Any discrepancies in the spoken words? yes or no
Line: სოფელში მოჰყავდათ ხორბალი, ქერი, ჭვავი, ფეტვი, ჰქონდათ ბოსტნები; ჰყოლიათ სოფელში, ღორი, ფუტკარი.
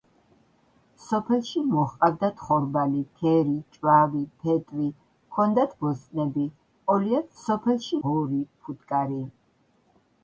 no